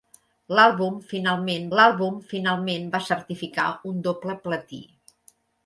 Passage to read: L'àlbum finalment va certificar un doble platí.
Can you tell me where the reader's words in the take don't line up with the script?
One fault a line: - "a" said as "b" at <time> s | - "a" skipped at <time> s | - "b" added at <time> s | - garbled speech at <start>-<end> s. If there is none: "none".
- "l'àlbum finalment" added at 1.8 s